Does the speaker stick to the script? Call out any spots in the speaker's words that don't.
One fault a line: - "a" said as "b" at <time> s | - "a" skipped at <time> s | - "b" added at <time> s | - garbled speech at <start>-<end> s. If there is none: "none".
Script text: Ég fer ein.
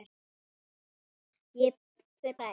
none